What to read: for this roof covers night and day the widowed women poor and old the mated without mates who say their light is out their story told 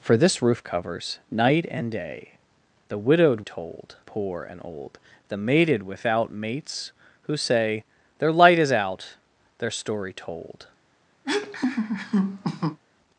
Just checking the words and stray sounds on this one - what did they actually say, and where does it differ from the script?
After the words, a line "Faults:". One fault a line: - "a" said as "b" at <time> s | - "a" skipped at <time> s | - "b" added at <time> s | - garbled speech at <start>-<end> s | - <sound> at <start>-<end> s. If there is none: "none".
for this roof covers night and day the widowed told poor and old the mated without mates who say their light is out their story told
Faults:
- "women" said as "told" at 3.4 s
- laugh at 11.2-12.8 s